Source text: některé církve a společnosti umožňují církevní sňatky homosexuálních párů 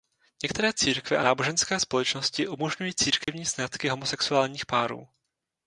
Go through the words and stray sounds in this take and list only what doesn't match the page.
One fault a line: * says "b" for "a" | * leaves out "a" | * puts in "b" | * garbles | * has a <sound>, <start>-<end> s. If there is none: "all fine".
* puts in "náboženské"
* has a dropout, 3.2-3.3 s